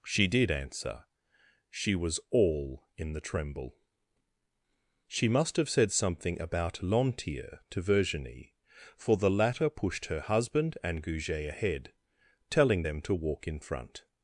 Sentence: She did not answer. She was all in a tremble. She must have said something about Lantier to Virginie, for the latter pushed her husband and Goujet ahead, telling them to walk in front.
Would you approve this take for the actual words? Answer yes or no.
no